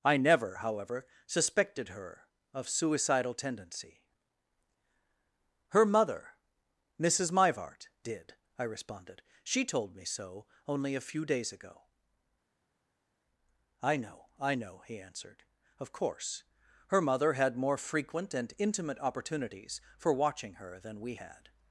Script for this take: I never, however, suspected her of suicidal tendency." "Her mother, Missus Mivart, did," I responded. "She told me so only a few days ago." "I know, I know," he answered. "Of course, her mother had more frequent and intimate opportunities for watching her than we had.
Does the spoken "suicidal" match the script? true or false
true